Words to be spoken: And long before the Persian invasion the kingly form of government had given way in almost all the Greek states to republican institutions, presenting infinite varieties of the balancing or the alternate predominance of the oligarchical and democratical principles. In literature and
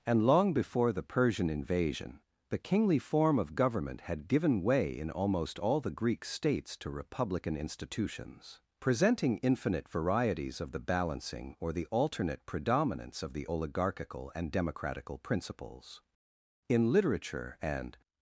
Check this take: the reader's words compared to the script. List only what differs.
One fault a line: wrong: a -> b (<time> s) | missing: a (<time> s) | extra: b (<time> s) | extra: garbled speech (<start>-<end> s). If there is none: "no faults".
no faults